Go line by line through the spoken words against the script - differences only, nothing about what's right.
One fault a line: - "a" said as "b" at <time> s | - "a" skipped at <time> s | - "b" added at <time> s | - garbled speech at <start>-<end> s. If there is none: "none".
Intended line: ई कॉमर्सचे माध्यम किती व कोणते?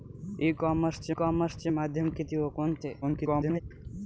- "कॉमर्सचे" added at 1.1 s
- garbled speech at 3.0-3.6 s